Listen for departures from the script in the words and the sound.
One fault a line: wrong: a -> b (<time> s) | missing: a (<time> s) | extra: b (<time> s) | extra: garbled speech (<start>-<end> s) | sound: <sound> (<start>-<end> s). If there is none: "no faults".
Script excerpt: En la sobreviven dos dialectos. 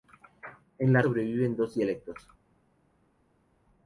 no faults